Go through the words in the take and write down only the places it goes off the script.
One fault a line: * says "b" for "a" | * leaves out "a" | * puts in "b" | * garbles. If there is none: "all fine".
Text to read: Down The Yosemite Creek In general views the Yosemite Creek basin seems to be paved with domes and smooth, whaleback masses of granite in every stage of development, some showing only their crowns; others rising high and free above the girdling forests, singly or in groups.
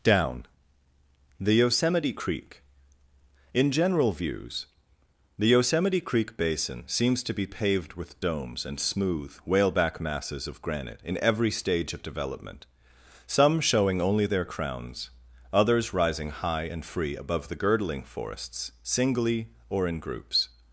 all fine